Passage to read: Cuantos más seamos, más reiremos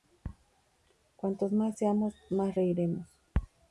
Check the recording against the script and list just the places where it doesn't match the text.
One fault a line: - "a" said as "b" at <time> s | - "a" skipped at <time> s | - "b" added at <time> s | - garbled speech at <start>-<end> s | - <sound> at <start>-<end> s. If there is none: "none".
none